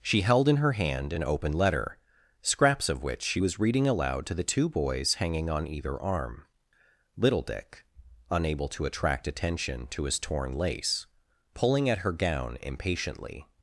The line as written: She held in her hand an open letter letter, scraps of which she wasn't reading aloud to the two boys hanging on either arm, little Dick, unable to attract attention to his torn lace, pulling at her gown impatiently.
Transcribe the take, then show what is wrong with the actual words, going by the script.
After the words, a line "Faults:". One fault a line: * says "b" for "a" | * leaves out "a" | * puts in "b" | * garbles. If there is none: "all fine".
She held in her hand an open letter, scraps of which she was reading aloud to the two boys hanging on either arm, little Dick, unable to attract attention to his torn lace, pulling at her gown impatiently.
Faults:
* leaves out "letter"
* says "was" for "wasn't"